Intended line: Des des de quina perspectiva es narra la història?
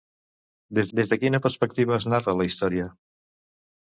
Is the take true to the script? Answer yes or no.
yes